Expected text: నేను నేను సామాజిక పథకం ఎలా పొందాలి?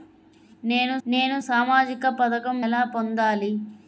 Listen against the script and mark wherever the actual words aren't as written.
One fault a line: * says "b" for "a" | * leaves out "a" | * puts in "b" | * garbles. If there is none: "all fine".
all fine